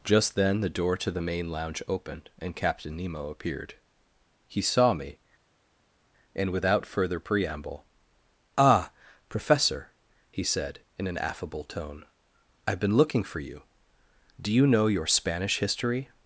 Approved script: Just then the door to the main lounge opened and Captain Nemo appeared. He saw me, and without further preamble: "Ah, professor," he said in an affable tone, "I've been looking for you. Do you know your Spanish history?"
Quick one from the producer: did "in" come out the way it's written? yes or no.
yes